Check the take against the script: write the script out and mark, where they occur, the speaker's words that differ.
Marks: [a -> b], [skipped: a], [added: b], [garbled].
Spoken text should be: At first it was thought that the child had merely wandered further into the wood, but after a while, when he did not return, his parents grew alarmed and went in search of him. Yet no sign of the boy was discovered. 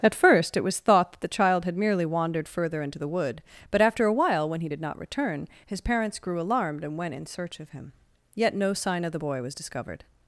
At first it was thought that the child had merely wandered further into the wood, but after a while, when he did not return, his parents grew alarmed and went in search of him. Yet no sign of the boy was discovered.